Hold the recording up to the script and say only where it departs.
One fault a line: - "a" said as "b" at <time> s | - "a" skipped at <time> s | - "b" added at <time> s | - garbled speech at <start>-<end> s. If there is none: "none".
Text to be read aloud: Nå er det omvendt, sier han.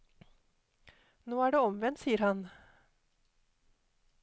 none